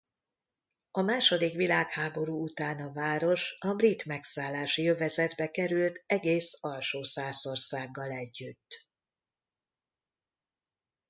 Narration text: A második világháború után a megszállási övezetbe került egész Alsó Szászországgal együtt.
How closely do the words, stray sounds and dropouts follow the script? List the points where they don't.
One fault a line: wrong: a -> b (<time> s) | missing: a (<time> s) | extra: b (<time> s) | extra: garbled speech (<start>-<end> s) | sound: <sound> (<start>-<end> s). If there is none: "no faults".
extra: város a brit (2.9 s)